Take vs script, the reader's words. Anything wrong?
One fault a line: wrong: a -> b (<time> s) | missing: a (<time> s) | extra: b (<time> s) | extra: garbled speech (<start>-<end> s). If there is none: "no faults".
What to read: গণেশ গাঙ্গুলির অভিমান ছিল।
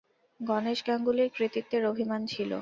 extra: কৃতিত্বের (1.4 s)